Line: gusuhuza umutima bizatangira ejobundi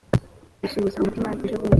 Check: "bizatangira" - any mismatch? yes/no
yes